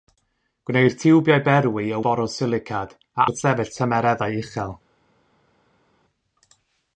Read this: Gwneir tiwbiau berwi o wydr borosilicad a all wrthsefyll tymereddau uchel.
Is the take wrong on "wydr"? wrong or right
wrong